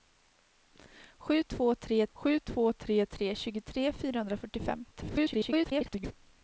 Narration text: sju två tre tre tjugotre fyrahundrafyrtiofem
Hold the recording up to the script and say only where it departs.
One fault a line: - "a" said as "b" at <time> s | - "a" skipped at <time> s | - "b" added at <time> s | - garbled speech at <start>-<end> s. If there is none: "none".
- "sju två tre" added at 2.1 s
- garbled speech at 4.9-6.1 s